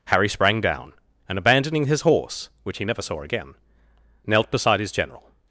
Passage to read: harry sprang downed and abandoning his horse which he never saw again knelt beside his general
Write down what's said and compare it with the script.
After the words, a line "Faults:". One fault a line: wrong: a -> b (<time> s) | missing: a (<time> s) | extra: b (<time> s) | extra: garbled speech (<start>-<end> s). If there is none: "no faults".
harry sprang down and abandoning his horse which he never saw again knelt beside his general
Faults:
wrong: downed -> down (0.6 s)